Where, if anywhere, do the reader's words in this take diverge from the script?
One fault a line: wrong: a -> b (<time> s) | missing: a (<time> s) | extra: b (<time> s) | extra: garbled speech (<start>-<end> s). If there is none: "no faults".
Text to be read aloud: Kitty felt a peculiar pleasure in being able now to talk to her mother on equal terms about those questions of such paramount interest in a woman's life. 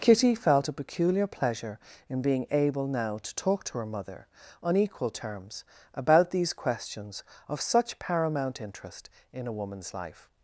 wrong: those -> these (6.3 s)